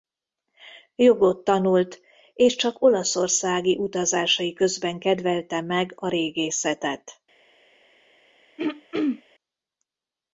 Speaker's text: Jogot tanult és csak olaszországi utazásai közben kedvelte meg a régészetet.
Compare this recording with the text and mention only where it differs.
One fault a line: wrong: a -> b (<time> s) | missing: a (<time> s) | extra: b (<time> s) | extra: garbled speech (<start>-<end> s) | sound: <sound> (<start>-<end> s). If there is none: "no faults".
sound: throat clearing (8.6-9.2 s)